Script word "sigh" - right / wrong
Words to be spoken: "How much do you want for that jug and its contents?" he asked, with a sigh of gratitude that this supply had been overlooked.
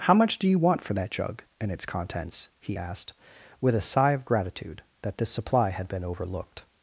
right